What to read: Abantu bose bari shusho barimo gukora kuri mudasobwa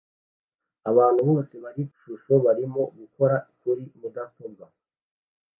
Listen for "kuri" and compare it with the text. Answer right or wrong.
right